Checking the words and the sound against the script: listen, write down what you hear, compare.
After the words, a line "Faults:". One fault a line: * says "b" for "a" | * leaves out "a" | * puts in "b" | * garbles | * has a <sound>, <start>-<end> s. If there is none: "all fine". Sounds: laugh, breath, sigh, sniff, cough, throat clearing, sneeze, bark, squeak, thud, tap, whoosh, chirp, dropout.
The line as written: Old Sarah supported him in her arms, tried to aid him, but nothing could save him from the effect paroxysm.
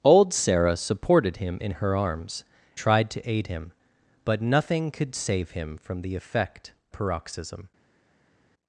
Old Sarah supported him in her arms, tried to aid him, but nothing could save him from the effect paroxysm.
Faults:
all fine